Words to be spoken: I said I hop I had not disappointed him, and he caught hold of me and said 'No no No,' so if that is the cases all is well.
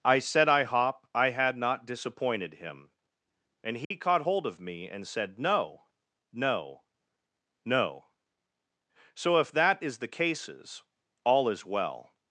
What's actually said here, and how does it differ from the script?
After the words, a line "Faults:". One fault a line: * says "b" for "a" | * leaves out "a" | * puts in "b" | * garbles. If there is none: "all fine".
I said I hop I had not disappointed him, and he caught hold of me and said 'No no No,' so if that is the cases all is well.
Faults:
all fine